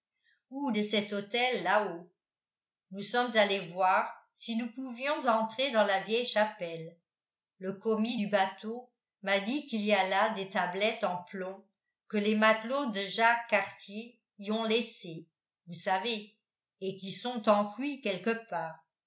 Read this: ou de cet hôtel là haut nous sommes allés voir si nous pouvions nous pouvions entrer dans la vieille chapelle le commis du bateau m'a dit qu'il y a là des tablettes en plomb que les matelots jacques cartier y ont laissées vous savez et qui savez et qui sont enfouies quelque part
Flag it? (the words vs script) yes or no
yes